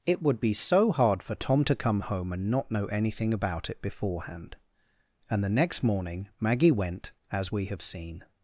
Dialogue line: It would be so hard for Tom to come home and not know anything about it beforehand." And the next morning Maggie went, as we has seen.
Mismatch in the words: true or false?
true